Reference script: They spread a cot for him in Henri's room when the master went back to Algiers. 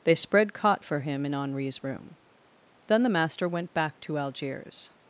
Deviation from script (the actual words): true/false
true